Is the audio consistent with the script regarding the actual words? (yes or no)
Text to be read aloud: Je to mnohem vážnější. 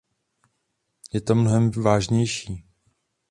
yes